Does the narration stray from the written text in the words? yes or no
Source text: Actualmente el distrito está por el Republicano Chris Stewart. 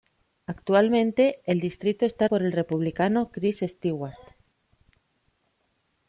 no